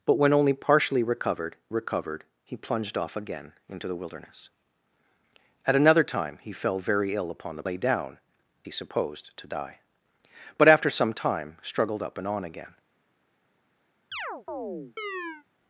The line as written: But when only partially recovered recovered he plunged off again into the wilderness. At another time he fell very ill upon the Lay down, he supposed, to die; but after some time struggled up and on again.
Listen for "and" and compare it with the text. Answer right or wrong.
right